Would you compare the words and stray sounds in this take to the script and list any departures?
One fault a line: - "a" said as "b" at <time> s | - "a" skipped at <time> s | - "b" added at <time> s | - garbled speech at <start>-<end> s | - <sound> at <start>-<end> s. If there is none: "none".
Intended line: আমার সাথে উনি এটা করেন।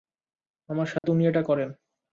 - dropout at 1.0-1.0 s